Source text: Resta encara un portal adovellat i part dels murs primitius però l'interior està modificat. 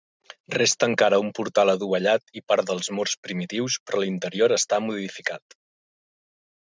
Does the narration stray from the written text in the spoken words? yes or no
no